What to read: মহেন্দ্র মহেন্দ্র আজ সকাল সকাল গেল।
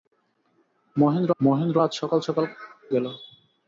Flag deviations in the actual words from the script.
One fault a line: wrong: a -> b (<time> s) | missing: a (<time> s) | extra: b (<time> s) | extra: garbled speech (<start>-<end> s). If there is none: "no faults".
no faults